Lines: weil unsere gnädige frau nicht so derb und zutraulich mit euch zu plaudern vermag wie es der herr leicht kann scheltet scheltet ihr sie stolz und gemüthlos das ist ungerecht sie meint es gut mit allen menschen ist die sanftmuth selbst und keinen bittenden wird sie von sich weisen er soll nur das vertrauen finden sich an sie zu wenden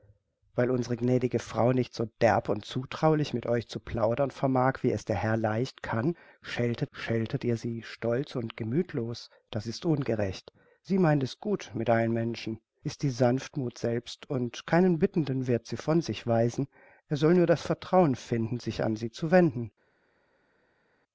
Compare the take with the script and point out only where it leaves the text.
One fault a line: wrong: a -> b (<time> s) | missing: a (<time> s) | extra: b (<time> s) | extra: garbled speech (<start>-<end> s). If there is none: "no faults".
no faults